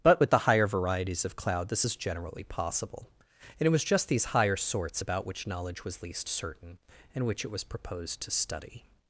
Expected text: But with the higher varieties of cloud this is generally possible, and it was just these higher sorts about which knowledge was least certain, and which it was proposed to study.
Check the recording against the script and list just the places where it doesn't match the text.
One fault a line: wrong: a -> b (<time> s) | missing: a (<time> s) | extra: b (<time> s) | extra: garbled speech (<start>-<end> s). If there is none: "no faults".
no faults